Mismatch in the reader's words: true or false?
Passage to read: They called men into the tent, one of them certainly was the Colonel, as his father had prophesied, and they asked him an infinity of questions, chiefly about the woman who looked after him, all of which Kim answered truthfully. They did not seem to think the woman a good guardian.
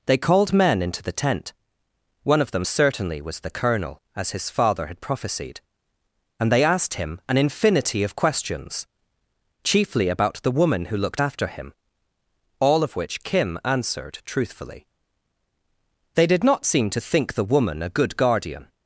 false